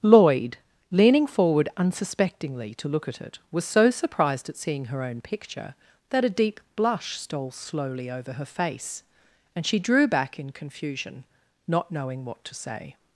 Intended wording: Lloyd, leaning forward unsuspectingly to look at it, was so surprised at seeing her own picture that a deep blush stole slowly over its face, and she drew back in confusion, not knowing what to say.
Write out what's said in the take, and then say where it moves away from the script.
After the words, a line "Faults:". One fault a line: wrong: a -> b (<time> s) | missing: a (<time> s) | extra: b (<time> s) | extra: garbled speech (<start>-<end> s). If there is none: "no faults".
Lloyd, leaning forward unsuspectingly to look at it, was so surprised at seeing her own picture that a deep blush stole slowly over her face, and she drew back in confusion, not knowing what to say.
Faults:
wrong: its -> her (8.3 s)